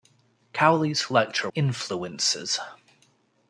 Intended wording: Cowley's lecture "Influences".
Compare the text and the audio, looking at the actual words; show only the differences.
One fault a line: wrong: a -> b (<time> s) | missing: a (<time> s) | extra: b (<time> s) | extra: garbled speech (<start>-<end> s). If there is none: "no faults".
no faults